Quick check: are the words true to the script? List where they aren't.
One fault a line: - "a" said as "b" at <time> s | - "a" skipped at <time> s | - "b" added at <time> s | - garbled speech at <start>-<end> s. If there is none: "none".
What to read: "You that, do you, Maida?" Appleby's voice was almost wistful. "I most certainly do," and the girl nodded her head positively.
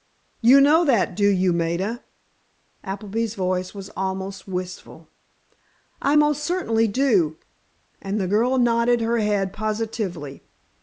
- "know" added at 0.6 s